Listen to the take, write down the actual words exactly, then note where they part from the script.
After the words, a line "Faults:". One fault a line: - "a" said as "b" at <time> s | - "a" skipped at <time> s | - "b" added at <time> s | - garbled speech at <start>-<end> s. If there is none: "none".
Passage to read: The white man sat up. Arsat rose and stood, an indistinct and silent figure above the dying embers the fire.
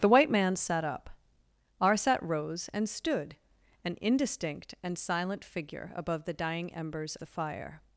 The white man sat up. Arsat rose and stood, an indistinct and silent figure above the dying embers the fire.
Faults:
none